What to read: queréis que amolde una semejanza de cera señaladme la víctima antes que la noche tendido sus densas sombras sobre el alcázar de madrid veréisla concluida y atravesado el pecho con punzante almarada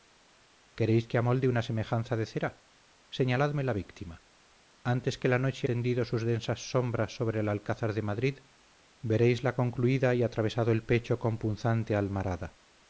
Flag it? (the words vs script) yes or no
no